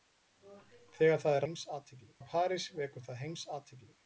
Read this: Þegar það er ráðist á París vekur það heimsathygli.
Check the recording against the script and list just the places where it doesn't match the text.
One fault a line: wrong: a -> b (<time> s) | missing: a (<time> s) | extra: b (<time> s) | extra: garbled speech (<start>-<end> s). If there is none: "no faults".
wrong: ráðist -> heimsathygli (1.4 s)